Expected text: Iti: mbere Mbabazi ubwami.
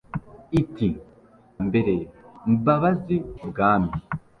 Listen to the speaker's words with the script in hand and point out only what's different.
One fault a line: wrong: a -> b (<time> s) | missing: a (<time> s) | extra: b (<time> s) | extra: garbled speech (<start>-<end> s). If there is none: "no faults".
no faults